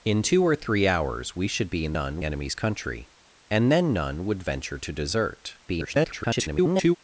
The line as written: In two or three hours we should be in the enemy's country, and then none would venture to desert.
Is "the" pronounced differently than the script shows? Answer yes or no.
yes